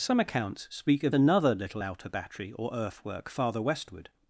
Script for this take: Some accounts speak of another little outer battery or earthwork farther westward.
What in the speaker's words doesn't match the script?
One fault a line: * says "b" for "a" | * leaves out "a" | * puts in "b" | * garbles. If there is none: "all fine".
all fine